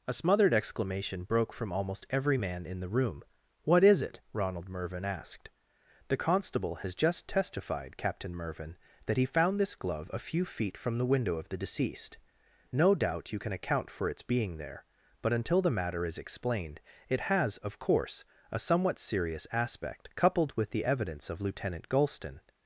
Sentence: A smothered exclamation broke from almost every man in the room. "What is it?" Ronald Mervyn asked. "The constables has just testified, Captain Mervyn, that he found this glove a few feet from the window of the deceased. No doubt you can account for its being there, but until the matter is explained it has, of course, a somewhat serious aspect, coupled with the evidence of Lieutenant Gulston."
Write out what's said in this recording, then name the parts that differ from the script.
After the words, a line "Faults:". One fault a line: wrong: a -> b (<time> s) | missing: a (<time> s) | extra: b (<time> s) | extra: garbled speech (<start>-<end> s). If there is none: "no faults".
A smothered exclamation broke from almost every man in the room. "What is it?" Ronald Mervyn asked. "The constable has just testified, Captain Mervyn, that he found this glove a few feet from the window of the deceased. No doubt you can account for its being there, but until the matter is explained it has, of course, a somewhat serious aspect, coupled with the evidence of Lieutenant Gulston."
Faults:
wrong: constables -> constable (6.1 s)